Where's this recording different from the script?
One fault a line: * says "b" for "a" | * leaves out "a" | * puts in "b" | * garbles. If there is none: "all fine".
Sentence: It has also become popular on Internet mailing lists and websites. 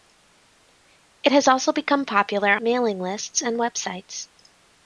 * leaves out "on Internet"